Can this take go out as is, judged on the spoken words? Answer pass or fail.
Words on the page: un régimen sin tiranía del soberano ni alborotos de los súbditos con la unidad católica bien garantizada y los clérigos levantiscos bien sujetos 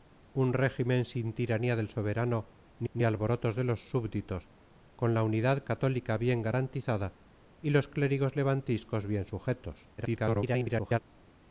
fail